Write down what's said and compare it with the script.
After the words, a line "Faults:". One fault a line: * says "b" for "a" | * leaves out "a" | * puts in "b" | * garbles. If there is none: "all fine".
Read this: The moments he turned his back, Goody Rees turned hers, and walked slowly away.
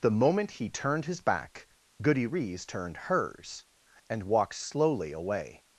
The moment he turned his back, Goody Rees turned hers, and walked slowly away.
Faults:
* says "moment" for "moments"